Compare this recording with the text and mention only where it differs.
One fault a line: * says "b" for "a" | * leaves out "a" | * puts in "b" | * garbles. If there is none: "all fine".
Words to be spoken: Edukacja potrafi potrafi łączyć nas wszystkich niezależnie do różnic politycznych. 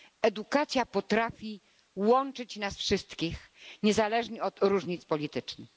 * leaves out "potrafi"
* says "od" for "do"